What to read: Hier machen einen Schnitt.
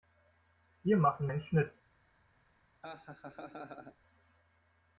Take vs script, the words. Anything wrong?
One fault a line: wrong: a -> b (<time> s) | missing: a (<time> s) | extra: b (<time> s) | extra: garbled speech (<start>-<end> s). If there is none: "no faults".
no faults